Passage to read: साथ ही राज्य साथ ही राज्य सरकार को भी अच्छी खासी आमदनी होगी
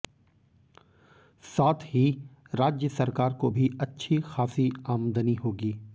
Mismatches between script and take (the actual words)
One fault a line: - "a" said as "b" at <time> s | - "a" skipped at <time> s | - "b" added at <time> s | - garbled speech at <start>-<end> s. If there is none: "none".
- "साथ ही राज्य" skipped at 2.9 s